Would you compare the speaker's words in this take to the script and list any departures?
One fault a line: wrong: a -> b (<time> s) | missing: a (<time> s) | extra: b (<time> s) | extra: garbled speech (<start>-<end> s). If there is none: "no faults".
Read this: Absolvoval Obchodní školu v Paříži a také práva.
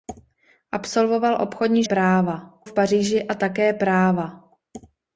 wrong: školu -> práva (1.8 s)